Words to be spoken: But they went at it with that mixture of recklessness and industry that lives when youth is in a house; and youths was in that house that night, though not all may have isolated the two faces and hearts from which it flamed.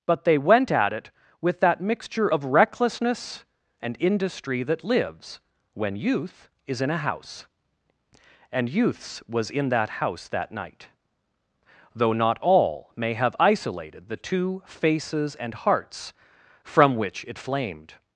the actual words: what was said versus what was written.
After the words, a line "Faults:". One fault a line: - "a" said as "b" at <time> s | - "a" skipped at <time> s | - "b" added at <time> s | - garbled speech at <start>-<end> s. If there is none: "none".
But they went at it with that mixture of recklessness and industry that lives when youth is in a house; and youths was in that house that night, though not all may have isolated the two faces and hearts from which it flamed.
Faults:
none